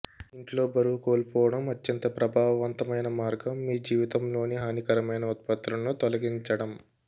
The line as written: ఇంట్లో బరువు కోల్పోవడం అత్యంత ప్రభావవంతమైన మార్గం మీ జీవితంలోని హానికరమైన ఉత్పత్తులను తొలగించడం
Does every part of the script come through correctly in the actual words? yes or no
yes